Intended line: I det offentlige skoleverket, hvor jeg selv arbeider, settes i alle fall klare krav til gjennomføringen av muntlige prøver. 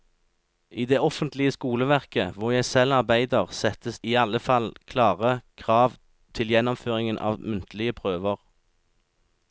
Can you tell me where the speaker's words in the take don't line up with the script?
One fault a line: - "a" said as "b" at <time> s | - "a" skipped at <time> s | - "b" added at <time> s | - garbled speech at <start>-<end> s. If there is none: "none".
none